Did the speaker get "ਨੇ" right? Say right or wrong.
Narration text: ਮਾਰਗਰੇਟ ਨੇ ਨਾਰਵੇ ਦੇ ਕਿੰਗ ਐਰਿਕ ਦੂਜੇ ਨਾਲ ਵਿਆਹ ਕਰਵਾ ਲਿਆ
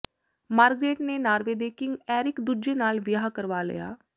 right